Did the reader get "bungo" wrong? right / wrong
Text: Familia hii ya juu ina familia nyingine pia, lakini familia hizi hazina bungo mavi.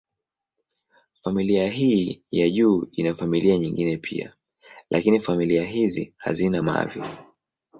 wrong